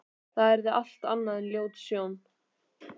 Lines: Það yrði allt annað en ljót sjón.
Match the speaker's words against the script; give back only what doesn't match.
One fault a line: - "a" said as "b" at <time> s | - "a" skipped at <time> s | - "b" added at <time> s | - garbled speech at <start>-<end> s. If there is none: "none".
none